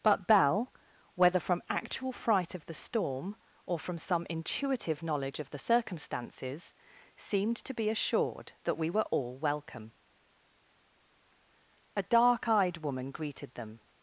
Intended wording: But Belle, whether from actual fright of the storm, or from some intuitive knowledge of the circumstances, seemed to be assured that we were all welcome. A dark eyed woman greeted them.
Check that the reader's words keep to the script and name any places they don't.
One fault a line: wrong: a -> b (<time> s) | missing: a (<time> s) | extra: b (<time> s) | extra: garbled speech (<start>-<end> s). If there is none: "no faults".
no faults